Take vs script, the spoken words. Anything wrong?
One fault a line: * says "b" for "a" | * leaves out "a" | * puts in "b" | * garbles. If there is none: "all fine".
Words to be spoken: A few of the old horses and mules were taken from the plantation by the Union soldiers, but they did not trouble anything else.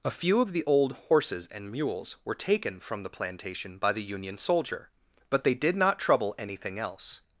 * says "soldier" for "soldiers"